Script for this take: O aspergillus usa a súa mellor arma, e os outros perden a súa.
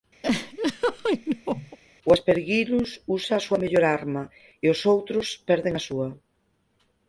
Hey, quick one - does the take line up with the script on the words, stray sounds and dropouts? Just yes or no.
no